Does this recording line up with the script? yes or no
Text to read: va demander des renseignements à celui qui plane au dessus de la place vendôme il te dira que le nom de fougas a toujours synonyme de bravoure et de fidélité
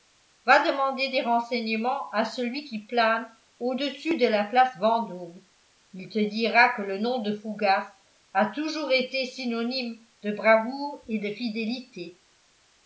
no